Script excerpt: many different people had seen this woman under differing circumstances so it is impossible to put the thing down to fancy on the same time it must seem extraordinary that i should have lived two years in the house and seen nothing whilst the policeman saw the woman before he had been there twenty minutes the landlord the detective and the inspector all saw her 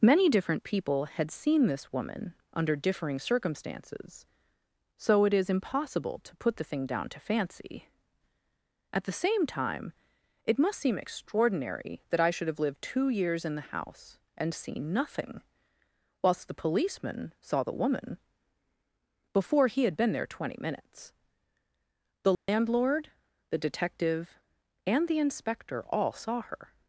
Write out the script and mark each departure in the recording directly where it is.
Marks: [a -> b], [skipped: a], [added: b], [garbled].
many different people had seen this woman under differing circumstances so it is impossible to put the thing down to fancy [on -> at] the same time it must seem extraordinary that i should have lived two years in the house and seen nothing whilst the policeman saw the woman before he had been there twenty minutes the landlord the detective and the inspector all saw her